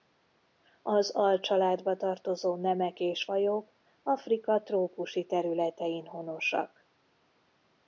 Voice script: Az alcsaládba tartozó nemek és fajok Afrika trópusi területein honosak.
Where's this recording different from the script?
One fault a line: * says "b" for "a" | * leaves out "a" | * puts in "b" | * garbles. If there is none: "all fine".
all fine